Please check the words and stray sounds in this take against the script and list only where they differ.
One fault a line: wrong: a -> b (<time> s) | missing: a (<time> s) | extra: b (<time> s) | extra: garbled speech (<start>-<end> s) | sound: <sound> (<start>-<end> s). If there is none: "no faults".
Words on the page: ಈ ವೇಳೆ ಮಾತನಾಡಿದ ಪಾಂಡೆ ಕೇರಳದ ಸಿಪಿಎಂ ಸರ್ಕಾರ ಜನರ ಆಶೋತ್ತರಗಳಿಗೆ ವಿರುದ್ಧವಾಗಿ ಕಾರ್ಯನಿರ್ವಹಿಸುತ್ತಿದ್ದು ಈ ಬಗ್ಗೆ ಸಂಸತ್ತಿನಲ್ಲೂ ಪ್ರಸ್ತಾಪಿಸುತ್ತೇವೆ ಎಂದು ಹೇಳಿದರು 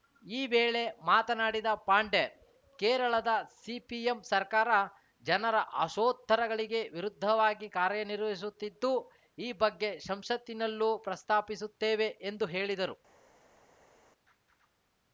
no faults